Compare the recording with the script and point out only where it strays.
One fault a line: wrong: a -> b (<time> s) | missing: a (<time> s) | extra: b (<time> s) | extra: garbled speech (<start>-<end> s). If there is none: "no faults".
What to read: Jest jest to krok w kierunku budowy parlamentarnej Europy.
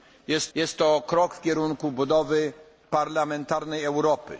no faults